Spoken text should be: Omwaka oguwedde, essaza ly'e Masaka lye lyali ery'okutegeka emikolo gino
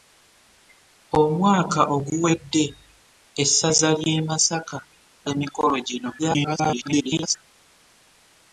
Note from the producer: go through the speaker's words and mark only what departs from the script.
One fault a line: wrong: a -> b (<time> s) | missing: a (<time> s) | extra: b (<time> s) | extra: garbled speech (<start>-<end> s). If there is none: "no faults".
missing: lye lyali ery'okutegeka (4.8 s)
extra: garbled speech (6.2-7.4 s)